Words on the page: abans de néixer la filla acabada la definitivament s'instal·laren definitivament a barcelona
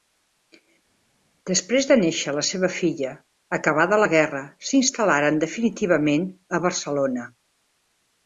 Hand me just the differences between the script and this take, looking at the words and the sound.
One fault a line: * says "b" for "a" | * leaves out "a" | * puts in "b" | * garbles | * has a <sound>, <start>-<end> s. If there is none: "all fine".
* says "després" for "abans"
* puts in "seva"
* says "guerra" for "definitivament"